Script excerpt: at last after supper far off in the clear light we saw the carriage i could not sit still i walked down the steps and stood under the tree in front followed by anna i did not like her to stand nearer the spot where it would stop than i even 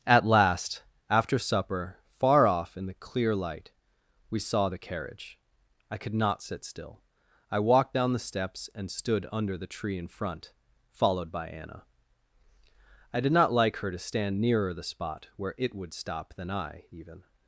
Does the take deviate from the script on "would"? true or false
false